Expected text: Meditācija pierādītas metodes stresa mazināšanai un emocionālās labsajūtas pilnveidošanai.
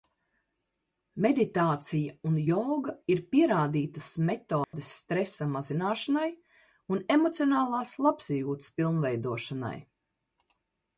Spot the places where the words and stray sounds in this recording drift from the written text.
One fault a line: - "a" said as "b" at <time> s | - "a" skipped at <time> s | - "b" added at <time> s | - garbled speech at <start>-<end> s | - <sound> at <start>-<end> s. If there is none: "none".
- "un joga ir" added at 2.3 s
- dropout at 4.6-4.7 s